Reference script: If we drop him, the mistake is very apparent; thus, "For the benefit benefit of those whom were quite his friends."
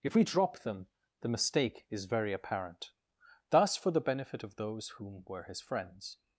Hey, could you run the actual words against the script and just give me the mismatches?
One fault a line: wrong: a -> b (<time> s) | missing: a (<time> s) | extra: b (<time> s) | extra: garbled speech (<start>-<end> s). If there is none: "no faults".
wrong: him -> them (0.6 s)
missing: benefit (4.4 s)
missing: quite (5.4 s)